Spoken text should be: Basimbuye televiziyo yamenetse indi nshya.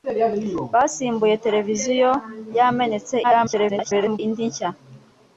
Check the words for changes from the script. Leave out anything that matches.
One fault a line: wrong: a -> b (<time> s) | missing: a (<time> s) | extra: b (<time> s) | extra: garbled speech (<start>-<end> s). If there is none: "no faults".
extra: garbled speech (3.2-4.2 s)